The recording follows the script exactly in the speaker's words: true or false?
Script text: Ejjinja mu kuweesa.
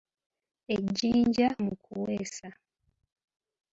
true